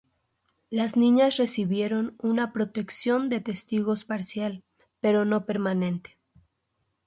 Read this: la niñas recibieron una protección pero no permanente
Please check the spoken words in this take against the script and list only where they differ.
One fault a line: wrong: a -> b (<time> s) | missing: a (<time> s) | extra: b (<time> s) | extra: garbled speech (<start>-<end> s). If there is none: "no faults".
wrong: la -> las (0.7 s)
extra: de testigos parcial (3.3 s)